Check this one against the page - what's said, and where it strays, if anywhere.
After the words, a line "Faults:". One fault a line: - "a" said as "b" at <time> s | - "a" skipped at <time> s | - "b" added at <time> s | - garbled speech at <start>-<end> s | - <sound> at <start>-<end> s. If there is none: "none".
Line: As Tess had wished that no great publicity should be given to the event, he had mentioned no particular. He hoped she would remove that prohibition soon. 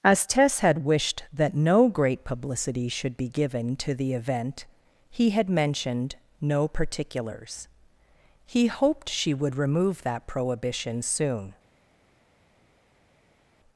As Tess had wished that no great publicity should be given to the event, he had mentioned no particulars. He hoped she would remove that prohibition soon.
Faults:
- "particular" said as "particulars" at 6.7 s